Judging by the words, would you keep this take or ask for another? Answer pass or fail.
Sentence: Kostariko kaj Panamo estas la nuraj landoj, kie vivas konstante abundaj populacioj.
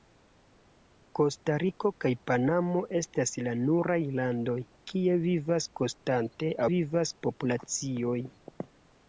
fail